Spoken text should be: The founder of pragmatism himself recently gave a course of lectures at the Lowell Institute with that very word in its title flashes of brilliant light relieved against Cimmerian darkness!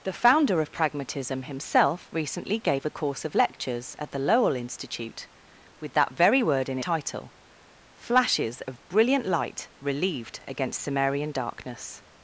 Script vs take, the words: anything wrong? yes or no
yes